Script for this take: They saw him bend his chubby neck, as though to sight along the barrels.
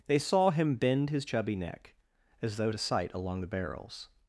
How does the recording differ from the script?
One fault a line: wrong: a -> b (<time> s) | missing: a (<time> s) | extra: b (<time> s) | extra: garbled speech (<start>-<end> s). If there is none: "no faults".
no faults